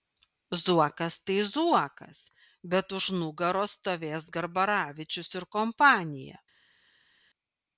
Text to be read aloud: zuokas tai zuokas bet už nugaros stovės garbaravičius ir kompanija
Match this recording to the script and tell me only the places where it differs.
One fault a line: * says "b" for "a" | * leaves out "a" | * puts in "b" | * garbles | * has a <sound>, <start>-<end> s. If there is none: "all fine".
all fine